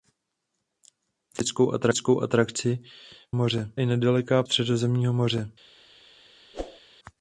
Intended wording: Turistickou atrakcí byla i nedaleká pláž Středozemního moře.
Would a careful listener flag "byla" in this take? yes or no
yes